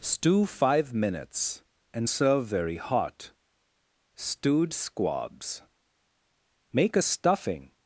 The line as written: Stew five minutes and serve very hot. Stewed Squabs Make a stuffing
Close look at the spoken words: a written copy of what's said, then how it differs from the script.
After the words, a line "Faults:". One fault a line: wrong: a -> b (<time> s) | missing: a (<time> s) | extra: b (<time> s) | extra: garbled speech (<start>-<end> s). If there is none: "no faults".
Stew five minutes and serve very hot. Stewed Squabs Make a stuffing
Faults:
no faults